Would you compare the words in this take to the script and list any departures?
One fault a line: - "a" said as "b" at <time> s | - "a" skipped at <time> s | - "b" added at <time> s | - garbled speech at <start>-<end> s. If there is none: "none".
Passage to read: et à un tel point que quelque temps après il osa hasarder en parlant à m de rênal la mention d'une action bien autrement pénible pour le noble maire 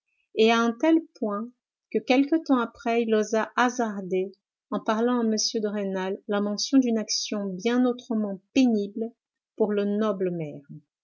none